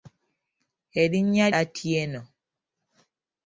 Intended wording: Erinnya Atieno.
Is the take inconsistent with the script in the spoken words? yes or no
no